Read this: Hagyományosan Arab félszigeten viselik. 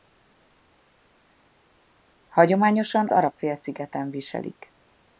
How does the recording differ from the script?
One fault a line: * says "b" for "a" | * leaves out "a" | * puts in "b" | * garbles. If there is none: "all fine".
all fine